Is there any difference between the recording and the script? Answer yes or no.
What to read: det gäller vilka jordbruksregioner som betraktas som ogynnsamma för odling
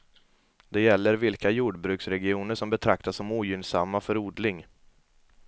no